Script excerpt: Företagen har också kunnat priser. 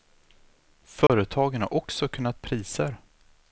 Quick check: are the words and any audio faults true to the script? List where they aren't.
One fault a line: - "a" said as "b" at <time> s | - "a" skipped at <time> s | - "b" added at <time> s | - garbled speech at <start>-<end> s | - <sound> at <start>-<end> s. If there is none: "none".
- dropout at 1.1-1.1 s